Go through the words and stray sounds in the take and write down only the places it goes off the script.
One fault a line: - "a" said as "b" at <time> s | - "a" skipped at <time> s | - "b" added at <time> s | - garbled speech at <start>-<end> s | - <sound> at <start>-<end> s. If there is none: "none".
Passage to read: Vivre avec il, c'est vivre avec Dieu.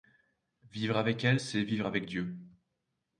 - "il" said as "elle" at 1.2 s